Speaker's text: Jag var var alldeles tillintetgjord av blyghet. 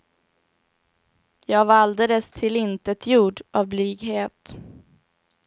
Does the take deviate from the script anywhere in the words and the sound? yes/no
yes